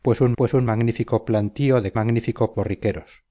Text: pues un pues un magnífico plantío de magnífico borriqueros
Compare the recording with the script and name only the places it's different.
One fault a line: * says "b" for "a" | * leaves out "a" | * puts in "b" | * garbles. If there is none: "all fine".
all fine